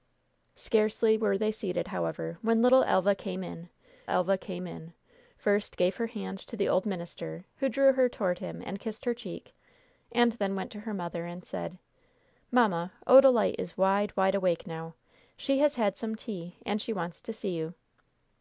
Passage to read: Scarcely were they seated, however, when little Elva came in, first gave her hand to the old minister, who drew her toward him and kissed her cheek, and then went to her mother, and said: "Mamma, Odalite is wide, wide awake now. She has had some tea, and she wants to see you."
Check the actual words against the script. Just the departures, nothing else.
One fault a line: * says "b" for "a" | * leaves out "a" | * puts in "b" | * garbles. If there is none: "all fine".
* puts in "Elva came in"